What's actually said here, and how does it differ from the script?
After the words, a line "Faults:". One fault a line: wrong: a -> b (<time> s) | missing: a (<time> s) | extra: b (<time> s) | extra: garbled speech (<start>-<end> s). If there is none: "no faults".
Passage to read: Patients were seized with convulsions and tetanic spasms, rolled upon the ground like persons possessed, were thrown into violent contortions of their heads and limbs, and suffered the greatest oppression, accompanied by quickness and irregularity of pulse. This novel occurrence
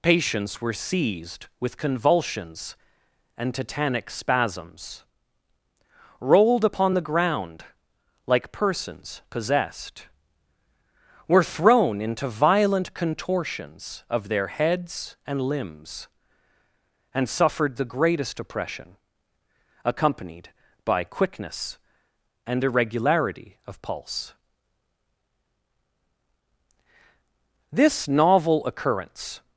Patients were seized with convulsions and tetanic spasms, rolled upon the ground like persons possessed, were thrown into violent contortions of their heads and limbs, and suffered the greatest oppression, accompanied by quickness and irregularity of pulse. This novel occurrence
Faults:
no faults